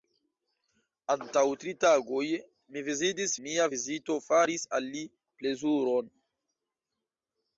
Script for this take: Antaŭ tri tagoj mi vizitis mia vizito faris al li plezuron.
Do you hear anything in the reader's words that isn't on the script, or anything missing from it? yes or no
no